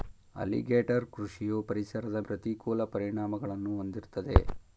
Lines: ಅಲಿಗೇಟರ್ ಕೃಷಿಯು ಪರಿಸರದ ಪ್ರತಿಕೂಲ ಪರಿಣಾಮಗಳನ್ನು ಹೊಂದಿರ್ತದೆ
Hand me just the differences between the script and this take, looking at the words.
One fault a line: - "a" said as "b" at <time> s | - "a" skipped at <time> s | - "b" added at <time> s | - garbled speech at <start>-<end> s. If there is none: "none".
none